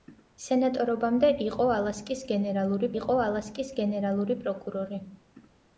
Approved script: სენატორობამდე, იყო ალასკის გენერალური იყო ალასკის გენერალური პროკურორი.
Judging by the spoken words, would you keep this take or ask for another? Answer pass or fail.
pass